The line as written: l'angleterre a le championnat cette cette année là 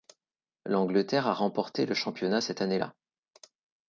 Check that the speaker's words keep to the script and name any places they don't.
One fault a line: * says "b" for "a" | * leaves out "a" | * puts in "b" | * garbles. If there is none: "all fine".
* puts in "remporté"
* leaves out "cette"